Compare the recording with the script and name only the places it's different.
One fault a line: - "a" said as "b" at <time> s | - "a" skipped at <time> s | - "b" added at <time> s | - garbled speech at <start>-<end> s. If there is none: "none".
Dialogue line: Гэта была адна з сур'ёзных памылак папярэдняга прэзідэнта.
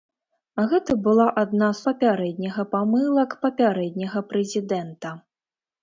- "сур'ёзных" said as "папярэдняга" at 1.9 s